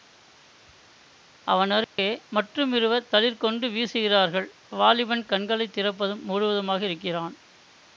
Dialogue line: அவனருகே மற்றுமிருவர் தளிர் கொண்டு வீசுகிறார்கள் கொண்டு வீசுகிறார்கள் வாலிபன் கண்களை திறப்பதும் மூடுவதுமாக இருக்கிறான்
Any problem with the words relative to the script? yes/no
yes